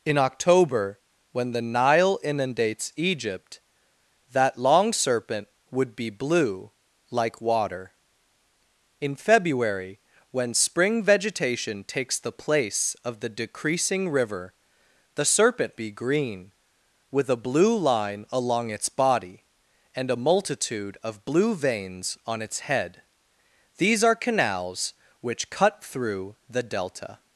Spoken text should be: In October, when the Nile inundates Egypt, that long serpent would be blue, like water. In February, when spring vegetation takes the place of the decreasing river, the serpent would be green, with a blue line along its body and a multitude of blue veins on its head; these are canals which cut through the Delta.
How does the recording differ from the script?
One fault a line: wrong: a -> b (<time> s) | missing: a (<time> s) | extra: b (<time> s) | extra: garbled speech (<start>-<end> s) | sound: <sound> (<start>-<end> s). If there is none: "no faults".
missing: would (15.7 s)